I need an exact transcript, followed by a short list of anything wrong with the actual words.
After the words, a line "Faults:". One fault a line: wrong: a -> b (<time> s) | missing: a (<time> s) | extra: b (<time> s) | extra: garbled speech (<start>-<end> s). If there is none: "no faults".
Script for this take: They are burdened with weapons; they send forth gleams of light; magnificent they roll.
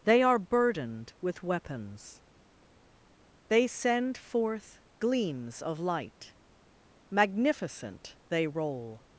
They are burdened with weapons; they send forth gleams of light; magnificent they roll.
Faults:
no faults